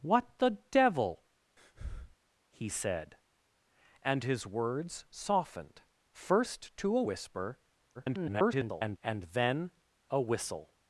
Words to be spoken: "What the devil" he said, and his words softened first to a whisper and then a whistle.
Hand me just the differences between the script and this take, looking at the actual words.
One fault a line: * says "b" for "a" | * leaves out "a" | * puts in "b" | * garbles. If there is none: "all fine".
* garbles